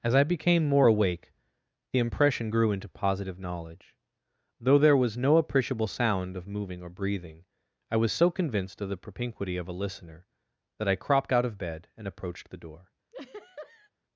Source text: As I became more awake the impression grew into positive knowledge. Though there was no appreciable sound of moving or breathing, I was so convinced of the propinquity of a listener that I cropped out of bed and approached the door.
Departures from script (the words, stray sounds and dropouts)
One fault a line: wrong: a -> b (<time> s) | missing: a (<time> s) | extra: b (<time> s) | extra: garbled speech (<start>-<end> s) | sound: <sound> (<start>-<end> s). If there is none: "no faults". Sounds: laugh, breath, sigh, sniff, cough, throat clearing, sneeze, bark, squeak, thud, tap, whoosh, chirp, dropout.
sound: laugh (13.1-13.9 s)